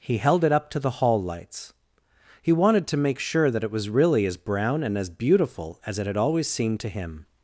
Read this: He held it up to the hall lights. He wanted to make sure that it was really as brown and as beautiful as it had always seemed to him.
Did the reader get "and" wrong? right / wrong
right